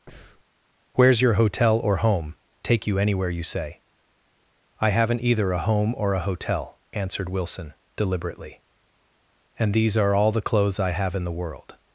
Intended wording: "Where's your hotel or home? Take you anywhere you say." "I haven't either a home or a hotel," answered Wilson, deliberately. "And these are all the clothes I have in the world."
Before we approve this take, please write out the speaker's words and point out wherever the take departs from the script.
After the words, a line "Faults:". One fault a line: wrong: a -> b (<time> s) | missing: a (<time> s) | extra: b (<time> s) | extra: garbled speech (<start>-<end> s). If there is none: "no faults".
"Where's your hotel or home? Take you anywhere you say." "I haven't either a home or a hotel," answered Wilson, deliberately. "And these are all the clothes I have in the world."
Faults:
no faults